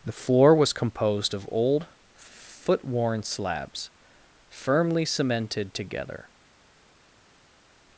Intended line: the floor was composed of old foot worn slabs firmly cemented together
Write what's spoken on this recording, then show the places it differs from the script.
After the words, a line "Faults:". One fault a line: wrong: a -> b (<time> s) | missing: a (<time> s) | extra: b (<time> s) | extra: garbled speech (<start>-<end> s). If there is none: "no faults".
the floor was composed of old foot worn slabs firmly cemented together
Faults:
no faults